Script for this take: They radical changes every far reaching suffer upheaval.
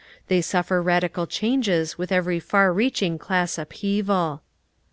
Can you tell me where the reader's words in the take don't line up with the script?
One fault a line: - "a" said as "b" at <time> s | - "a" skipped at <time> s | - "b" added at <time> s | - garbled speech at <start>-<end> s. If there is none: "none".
- "suffer" added at 0.4 s
- "with" added at 2.0 s
- "suffer" said as "class" at 3.2 s